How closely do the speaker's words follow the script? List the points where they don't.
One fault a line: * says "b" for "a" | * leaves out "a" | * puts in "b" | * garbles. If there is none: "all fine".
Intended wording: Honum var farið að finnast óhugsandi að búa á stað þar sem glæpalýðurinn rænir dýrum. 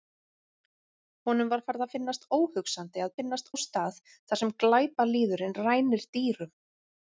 * says "finnast" for "búa"